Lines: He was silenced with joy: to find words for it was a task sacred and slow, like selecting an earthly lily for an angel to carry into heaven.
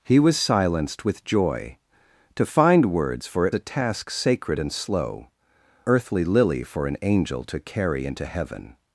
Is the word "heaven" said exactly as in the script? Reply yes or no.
yes